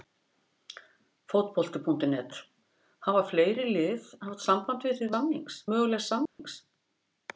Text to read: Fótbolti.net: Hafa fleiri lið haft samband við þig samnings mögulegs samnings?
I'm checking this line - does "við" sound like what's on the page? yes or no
yes